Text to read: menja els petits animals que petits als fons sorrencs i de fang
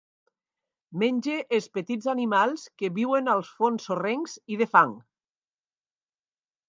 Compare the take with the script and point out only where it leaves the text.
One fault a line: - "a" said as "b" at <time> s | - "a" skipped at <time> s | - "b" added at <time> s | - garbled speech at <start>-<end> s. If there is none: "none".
- "petits" said as "viuen" at 3.0 s